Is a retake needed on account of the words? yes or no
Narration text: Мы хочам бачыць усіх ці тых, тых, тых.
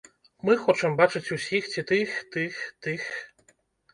no